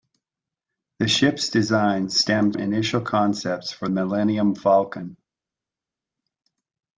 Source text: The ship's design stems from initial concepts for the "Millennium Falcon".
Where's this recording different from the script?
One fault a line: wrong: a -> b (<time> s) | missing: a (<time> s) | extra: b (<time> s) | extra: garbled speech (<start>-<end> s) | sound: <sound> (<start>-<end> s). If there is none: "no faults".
missing: from (2.6 s)
missing: the (3.9 s)